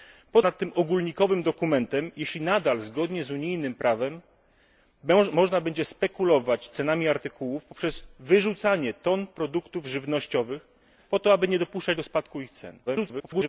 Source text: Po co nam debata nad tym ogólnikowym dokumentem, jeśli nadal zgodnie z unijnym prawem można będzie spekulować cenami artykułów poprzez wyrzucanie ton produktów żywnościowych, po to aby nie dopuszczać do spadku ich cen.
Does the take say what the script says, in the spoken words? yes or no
no